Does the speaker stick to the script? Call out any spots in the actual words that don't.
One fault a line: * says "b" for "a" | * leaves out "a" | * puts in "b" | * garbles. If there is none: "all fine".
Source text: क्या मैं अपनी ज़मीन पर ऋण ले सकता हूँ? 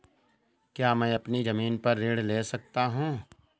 all fine